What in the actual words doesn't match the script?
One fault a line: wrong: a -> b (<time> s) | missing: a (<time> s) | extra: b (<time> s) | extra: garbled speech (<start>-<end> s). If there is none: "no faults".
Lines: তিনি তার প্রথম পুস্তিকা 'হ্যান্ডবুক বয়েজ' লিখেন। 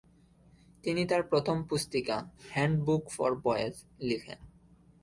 extra: ফর (3.1 s)